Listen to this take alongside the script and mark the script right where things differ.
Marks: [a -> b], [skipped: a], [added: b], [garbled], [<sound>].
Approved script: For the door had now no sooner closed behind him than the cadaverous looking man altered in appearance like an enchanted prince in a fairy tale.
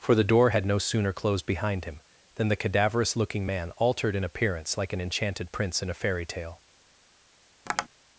For the door had [skipped: now] no sooner closed behind him than the cadaverous looking man altered in appearance like an enchanted prince in a fairy tale. [tap]